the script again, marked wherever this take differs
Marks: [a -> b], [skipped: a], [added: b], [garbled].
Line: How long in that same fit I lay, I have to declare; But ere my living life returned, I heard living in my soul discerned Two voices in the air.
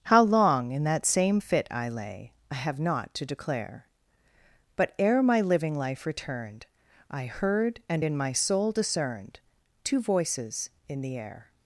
How long in that same fit I lay, I have [added: not] to declare; But ere my living life returned, I heard [living -> and] in my soul discerned Two voices in the air.